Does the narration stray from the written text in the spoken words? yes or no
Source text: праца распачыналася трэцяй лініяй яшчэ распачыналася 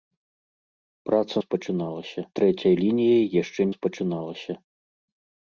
no